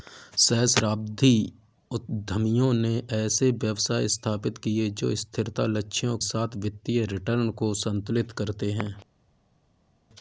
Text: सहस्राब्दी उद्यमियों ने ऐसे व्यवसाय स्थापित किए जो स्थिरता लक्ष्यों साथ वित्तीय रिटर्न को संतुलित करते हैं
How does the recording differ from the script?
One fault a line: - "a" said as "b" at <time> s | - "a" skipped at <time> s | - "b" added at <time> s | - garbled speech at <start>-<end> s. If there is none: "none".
none